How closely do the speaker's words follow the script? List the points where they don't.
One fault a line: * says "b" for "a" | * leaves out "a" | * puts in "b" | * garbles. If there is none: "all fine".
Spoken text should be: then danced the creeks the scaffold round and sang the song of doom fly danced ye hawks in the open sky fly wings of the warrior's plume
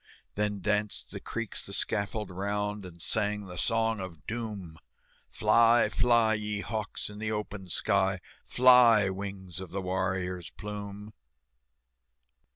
* says "fly" for "danced"